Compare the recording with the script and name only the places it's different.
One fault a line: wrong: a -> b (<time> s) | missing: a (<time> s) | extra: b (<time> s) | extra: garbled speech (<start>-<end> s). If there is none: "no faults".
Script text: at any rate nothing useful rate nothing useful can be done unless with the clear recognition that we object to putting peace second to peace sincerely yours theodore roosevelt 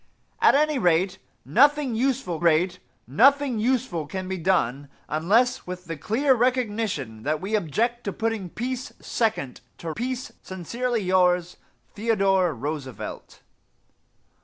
no faults